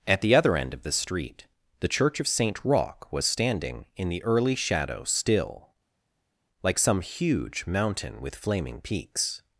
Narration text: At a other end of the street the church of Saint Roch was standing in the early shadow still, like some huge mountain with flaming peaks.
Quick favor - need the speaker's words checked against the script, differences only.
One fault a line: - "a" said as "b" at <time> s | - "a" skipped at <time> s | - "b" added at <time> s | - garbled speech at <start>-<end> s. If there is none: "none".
- "a" said as "the" at 0.2 s